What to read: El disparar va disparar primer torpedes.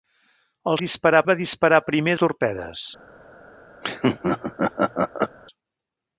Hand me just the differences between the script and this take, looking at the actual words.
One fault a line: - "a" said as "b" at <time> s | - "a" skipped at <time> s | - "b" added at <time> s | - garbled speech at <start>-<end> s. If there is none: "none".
none